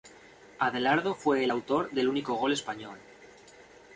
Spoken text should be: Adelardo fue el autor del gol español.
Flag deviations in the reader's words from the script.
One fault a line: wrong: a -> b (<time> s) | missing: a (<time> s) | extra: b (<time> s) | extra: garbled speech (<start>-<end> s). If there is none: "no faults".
extra: único (2.1 s)